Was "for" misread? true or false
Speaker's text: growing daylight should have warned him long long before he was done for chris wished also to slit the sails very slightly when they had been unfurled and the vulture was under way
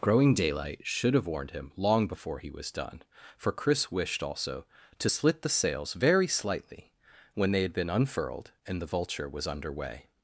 false